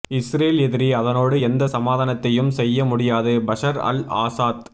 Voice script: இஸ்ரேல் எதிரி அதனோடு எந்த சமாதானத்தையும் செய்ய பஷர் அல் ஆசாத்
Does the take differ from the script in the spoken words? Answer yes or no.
yes